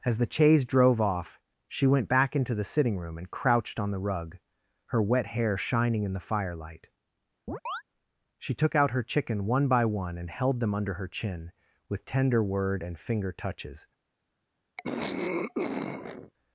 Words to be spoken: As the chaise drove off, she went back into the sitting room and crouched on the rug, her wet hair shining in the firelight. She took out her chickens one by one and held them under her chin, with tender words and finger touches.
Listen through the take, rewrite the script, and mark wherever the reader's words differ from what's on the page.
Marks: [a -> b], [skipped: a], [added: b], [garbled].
As the chaise drove off, she went back into the sitting room and crouched on the rug, her wet hair shining in the firelight. She took out her [chickens -> chicken] one by one and held them under her chin, with tender [words -> word] and finger touches.